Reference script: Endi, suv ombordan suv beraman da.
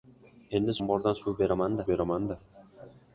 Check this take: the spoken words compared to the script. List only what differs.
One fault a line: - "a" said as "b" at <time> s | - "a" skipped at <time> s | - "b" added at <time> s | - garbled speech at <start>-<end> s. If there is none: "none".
- "suv" skipped at 0.8 s
- "beraman" added at 1.9 s